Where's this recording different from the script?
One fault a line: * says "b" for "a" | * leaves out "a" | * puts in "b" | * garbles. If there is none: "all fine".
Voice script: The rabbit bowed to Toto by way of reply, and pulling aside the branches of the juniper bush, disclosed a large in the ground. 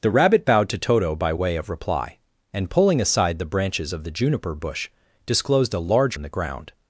all fine